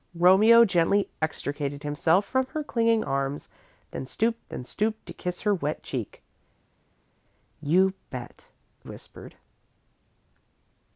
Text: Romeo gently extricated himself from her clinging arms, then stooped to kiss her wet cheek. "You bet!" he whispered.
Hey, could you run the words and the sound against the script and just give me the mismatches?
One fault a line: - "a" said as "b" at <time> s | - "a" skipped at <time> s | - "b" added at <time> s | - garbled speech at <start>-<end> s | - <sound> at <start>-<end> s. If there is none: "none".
- "then stooped" added at 4.5 s
- "he" skipped at 8.5 s